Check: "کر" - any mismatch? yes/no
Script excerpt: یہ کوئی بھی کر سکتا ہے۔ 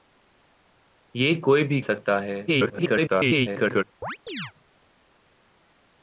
yes